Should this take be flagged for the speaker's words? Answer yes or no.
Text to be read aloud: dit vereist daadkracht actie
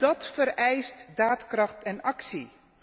yes